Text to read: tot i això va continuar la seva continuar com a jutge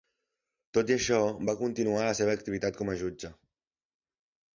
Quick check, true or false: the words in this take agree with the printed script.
false